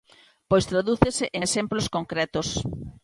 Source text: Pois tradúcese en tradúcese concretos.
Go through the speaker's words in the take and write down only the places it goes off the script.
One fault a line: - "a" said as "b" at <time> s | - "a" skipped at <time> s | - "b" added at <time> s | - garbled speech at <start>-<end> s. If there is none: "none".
- "tradúcese" said as "exemplos" at 1.4 s